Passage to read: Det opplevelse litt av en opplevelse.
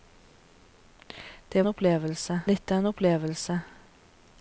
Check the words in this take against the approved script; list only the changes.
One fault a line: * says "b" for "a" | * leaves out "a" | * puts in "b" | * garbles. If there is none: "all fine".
all fine